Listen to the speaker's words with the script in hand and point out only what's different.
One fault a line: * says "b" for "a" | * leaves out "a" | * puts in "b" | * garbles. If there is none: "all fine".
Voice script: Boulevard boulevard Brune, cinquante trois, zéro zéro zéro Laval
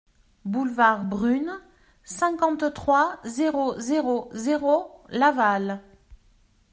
* leaves out "boulevard"